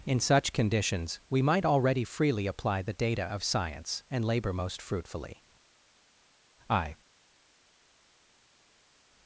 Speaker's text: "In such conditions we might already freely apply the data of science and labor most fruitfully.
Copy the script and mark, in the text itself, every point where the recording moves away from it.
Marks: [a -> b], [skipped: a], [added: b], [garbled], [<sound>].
"In such conditions we might already freely apply the data of science and labor most fruitfully. [added: I]